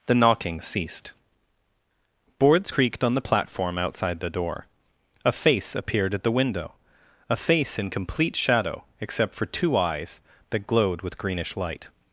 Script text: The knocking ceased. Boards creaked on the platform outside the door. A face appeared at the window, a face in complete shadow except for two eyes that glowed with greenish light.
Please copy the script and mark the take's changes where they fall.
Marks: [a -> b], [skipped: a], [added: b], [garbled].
The knocking ceased. Boards creaked on the platform outside the door. A face appeared at the window, a face in complete shadow except for two eyes that glowed with greenish light.